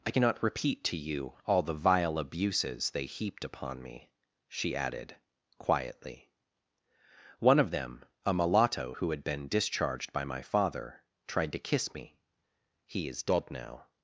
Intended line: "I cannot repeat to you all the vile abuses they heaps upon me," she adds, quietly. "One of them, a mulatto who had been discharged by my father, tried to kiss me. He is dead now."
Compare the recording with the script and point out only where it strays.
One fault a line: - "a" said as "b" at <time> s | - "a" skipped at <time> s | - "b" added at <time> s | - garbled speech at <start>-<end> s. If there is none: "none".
- "heaps" said as "heaped" at 3.0 s
- "adds" said as "added" at 4.8 s